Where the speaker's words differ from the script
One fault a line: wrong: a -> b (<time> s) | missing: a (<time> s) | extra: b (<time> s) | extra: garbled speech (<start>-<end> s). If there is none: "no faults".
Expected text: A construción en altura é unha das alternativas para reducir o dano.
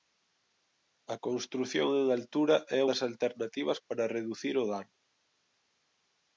missing: unha (2.8 s)